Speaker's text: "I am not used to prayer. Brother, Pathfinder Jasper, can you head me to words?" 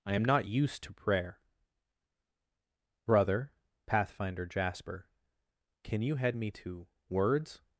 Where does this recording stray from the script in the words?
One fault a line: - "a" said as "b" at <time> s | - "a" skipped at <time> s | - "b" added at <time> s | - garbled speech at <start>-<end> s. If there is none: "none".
none